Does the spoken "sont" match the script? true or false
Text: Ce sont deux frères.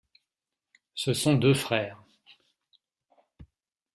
true